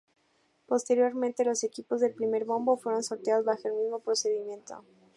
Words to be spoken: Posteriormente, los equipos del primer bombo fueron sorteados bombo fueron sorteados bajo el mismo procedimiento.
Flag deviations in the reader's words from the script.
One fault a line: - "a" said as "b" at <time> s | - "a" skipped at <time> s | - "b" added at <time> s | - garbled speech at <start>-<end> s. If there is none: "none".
- "bombo fueron sorteados" skipped at 3.5 s